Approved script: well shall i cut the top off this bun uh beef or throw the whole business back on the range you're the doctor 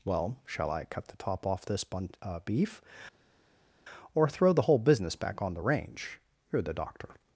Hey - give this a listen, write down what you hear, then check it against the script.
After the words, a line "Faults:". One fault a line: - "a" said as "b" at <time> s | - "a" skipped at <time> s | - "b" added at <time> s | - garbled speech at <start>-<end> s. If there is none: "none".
well shall i cut the top off this bun uh beef or throw the whole business back on the range you're the doctor
Faults:
none